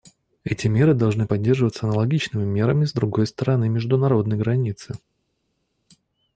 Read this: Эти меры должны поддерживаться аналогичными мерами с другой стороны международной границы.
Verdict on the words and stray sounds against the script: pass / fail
pass